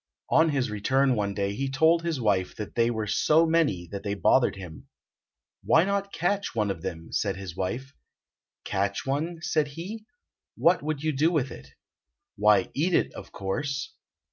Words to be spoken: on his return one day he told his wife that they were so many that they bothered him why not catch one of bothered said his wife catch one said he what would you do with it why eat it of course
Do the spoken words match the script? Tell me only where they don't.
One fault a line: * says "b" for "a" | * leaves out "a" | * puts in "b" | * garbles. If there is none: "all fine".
* says "them" for "bothered"